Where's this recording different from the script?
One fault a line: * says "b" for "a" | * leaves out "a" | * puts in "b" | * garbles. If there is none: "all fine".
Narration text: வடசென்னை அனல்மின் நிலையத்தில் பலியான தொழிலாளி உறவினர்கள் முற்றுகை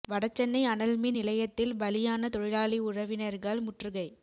all fine